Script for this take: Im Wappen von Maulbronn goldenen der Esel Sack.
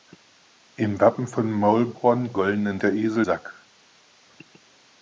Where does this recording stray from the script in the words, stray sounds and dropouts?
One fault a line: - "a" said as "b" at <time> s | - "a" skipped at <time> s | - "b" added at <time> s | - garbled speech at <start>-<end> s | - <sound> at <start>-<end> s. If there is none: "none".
none